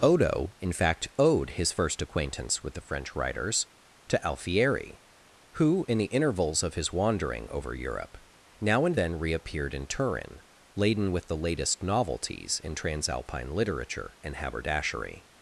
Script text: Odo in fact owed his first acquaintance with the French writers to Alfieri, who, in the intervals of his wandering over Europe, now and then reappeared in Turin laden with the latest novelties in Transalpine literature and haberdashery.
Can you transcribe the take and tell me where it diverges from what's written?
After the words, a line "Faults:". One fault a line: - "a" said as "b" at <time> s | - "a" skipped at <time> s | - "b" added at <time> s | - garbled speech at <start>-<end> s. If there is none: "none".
Odo in fact owed his first acquaintance with the French writers to Alfieri, who, in the intervals of his wandering over Europe, now and then reappeared in Turin laden with the latest novelties in Transalpine literature and haberdashery.
Faults:
none